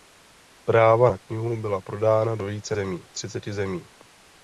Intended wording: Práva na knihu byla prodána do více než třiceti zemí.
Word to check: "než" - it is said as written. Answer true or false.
false